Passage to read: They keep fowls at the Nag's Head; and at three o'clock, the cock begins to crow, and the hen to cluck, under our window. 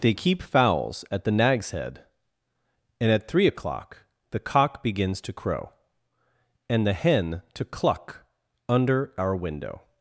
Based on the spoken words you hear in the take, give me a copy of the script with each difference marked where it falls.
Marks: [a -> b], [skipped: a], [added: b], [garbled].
They keep fowls at the Nag's Head; and at three o'clock, the cock begins to crow, and the hen to cluck, under our window.